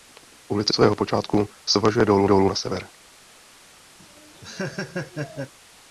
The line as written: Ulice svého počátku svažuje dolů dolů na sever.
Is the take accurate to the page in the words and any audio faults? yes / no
no